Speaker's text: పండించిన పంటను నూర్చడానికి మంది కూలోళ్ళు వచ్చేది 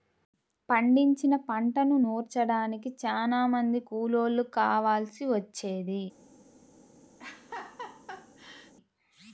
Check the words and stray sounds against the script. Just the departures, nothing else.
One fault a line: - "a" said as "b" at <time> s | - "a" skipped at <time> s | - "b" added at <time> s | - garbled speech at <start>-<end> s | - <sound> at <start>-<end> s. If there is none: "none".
- "చానా" added at 3.0 s
- "కావాల్సి" added at 4.6 s
- laugh at 7.2-8.7 s